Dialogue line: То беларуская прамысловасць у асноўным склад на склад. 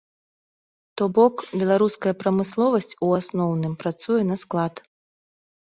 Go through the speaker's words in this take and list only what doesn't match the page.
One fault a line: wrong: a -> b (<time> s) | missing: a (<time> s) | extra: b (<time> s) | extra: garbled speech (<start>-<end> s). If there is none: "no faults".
extra: бок (1.2 s)
wrong: склад -> працуе (3.9 s)